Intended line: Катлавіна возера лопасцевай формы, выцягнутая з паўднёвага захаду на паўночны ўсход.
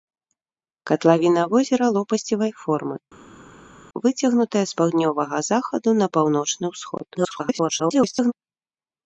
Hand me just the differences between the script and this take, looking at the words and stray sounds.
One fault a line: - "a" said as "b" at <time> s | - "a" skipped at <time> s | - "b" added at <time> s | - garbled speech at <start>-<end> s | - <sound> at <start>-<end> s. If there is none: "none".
- garbled speech at 7.1-8.3 s